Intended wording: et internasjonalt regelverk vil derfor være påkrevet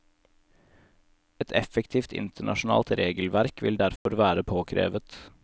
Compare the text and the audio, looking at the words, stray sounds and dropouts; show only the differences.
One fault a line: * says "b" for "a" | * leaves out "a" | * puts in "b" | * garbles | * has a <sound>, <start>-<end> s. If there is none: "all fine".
* puts in "effektivt"
* has a dropout, 4.0-4.1 s